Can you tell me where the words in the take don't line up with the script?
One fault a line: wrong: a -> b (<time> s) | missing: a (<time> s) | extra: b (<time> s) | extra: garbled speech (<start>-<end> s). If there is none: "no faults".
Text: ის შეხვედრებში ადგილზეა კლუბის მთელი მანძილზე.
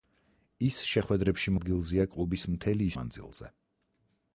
no faults